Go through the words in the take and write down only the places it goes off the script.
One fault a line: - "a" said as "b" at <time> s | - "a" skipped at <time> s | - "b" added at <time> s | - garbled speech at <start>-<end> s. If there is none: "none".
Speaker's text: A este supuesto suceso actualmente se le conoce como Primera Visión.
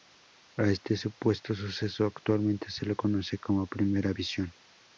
none